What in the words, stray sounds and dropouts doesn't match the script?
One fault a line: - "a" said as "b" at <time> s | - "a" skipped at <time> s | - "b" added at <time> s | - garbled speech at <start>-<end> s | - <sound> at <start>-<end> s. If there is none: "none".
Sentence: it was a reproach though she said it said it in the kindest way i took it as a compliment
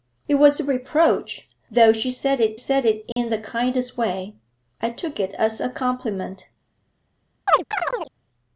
- dropout at 3.1-3.2 s
- chirp at 7.5-8.1 s